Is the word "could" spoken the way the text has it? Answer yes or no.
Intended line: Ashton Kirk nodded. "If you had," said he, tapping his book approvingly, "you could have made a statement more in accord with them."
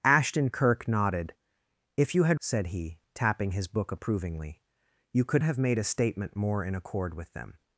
yes